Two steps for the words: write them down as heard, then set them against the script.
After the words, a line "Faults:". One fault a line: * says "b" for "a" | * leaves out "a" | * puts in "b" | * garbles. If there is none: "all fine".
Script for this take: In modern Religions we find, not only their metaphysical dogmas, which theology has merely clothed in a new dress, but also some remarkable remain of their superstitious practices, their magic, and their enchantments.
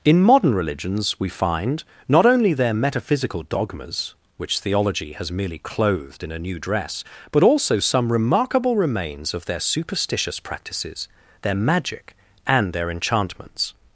In modern Religions we find, not only their metaphysical dogmas, which theology has merely clothed in a new dress, but also some remarkable remains of their superstitious practices, their magic, and their enchantments.
Faults:
* says "remains" for "remain"